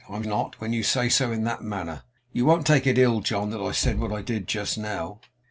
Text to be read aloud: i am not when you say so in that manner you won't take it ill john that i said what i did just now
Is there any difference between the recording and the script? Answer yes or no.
no